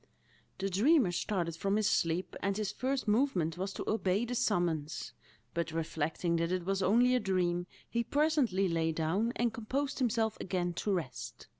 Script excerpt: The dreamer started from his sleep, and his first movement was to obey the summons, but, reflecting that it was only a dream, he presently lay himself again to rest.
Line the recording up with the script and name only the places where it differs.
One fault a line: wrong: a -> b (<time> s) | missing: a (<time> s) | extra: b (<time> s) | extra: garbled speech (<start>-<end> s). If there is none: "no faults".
extra: down and composed (8.9 s)